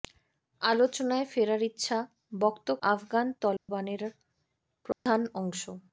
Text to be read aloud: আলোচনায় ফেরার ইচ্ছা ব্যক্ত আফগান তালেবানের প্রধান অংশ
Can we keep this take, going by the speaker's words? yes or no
yes